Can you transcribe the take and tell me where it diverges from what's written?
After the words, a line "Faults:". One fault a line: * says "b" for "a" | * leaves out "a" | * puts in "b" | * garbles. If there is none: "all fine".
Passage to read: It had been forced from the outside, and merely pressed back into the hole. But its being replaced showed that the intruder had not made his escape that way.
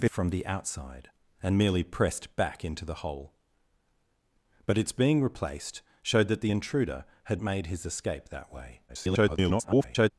It from the outside, and merely pressed back into the hole. But its being replaced showed that the intruder had made his escape that way. [garbled]
Faults:
* leaves out "had been forced"
* leaves out "not"
* garbles